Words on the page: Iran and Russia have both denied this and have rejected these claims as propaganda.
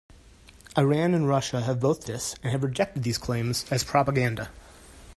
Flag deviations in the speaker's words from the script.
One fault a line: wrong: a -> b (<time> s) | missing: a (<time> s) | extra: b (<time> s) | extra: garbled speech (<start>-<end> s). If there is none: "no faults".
missing: denied (2.0 s)